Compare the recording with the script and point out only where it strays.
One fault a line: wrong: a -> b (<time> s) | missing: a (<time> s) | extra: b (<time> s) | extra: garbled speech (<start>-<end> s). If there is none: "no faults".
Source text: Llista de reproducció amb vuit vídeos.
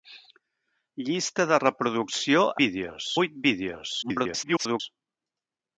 wrong: amb -> vídeos (2.6 s)
extra: garbled speech (4.0-4.8 s)